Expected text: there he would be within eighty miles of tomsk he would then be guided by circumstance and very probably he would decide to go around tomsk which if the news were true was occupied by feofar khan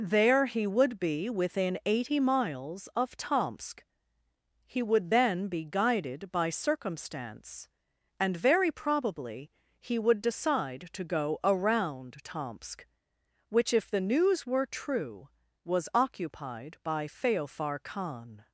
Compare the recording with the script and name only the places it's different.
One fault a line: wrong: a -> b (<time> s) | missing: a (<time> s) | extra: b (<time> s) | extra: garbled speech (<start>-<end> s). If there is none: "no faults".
no faults